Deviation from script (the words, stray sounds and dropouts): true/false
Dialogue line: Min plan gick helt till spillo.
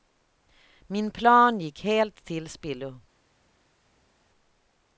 false